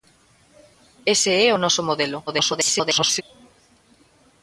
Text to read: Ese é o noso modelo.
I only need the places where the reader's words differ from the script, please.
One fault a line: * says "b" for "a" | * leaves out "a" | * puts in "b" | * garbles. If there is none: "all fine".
* garbles